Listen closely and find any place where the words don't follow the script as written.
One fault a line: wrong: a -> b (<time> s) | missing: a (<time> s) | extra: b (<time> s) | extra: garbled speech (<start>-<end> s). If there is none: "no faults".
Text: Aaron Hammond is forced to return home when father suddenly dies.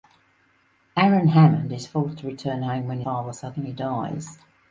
no faults